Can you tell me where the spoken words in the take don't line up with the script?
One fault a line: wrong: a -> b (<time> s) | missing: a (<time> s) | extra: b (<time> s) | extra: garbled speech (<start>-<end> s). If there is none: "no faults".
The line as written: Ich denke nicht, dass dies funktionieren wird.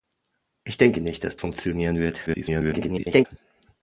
missing: dies (1.4 s)
extra: garbled speech (2.3-3.3 s)